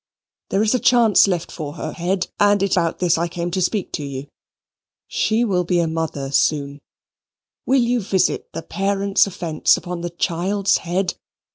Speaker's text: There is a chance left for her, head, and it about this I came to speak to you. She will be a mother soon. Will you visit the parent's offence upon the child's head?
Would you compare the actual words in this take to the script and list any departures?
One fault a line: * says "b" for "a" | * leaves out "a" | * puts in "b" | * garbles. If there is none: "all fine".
all fine